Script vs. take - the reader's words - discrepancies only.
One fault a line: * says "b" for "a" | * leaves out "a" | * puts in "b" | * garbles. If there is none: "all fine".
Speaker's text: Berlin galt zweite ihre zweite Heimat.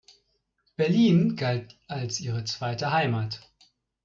* says "als" for "zweite"